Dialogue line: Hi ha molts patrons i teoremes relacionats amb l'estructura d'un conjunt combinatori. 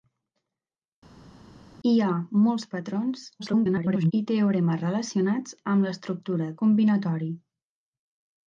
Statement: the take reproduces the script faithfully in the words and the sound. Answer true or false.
false